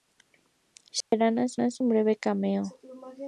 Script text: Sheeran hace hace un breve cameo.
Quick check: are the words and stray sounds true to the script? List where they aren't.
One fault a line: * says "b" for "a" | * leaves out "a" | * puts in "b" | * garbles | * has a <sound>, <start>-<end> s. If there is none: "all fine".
* has a dropout, 1.0-1.1 s